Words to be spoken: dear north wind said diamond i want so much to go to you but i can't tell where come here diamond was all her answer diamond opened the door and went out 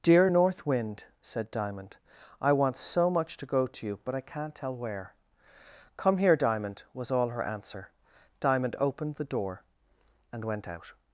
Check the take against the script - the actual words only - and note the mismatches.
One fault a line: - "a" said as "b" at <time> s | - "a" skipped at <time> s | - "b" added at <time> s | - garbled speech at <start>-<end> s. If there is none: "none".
none